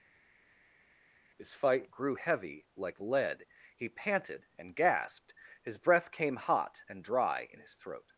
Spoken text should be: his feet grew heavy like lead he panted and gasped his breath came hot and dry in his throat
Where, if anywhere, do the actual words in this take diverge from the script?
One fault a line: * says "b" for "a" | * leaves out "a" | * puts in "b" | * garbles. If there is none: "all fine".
* says "fight" for "feet"